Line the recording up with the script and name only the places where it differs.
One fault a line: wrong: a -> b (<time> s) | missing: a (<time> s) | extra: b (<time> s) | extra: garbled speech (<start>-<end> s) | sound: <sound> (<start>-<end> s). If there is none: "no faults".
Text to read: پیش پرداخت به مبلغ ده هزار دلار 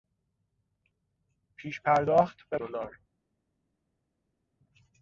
missing: مبلغ ده هزار (2.6 s)